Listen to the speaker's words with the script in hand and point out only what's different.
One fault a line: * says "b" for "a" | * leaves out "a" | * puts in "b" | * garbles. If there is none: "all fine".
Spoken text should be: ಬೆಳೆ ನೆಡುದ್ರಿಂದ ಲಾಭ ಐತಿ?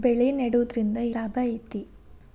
all fine